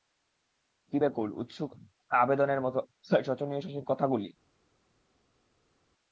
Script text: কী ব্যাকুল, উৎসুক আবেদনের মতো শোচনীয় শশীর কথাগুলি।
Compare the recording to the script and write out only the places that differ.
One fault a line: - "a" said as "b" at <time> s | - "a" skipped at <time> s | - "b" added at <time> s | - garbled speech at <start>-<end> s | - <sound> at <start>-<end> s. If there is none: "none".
none